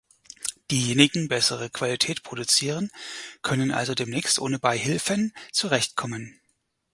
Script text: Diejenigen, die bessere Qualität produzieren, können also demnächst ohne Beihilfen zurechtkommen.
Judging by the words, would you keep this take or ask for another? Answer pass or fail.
fail